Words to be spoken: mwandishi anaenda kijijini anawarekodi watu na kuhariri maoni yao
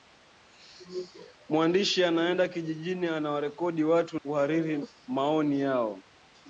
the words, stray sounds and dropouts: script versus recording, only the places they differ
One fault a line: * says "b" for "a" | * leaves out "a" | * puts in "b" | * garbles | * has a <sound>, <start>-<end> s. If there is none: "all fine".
* leaves out "na"